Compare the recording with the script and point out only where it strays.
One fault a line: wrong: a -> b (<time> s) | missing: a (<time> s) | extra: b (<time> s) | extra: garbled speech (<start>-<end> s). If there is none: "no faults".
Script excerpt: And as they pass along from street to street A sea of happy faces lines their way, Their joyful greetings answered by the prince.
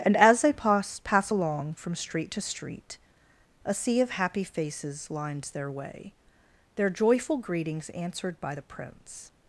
extra: pass (1.0 s)